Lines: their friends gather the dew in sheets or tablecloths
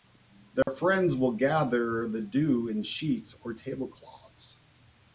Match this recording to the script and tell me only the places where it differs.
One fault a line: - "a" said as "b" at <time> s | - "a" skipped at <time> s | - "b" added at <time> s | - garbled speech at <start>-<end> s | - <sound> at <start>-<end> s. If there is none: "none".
- dropout at 0.6-0.7 s
- "will" added at 1.1 s